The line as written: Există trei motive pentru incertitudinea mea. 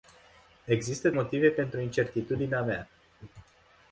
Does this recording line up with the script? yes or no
no